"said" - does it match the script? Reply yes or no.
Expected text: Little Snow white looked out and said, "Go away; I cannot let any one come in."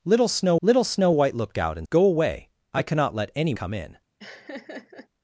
no